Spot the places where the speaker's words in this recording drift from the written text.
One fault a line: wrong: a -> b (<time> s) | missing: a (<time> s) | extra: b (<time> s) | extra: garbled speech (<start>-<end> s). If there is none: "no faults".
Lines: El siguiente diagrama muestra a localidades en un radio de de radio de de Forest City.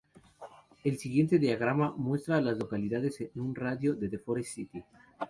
extra: las (2.4 s)
missing: radio de de (4.2 s)